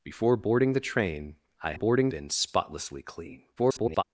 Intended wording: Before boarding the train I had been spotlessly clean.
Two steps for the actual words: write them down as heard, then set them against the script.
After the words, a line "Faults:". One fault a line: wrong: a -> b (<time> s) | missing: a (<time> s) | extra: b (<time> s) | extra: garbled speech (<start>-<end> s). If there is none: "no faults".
Before boarding the train I boarding been spotlessly clean. [garbled]
Faults:
wrong: had -> boarding (1.7 s)
extra: garbled speech (3.6-4.0 s)